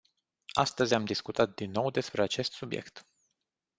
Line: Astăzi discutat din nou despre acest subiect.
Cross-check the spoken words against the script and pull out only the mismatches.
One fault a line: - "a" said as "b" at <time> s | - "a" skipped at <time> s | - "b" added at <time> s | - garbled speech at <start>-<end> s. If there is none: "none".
- "am" added at 0.9 s